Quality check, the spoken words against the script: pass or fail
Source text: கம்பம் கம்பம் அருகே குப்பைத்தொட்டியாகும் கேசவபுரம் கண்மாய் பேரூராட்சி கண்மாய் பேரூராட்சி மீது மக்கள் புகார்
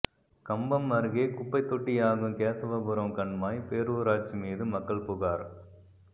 fail